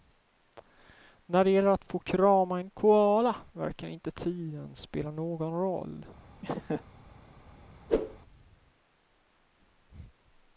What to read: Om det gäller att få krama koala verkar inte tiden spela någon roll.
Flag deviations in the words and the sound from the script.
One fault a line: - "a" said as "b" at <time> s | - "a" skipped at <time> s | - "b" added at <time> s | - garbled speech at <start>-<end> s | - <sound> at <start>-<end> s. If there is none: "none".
- "Om" said as "När" at 1.2 s
- "en" added at 2.6 s
- laugh at 6.4-6.9 s
- whoosh at 7.9-8.2 s